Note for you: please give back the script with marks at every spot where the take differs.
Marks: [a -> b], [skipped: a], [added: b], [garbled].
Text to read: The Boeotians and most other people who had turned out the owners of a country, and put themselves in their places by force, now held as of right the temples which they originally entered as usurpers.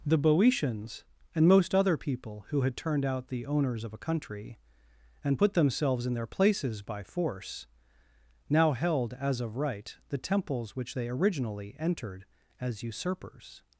The Boeotians and most other people who had turned out the owners of a country, and put themselves in their places by force, now held as of right the temples which they originally entered as usurpers.